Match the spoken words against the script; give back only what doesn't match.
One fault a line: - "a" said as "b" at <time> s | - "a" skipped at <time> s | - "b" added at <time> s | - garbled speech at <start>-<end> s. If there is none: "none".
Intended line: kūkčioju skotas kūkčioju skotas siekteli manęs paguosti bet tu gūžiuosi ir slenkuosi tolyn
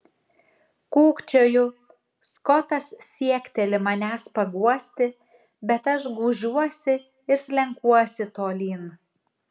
- "kūkčioju skotas" skipped at 2.9 s
- "tu" said as "aš" at 6.0 s